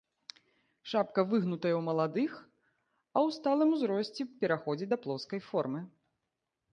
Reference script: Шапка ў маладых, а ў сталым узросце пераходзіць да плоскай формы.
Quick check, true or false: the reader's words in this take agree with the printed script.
false